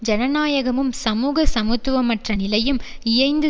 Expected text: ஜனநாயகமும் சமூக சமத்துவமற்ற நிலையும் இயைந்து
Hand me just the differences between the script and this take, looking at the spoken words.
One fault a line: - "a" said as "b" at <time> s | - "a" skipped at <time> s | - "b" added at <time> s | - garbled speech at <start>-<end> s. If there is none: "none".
none